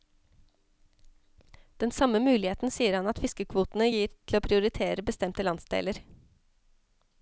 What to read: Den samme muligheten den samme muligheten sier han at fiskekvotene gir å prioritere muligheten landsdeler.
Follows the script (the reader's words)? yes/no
no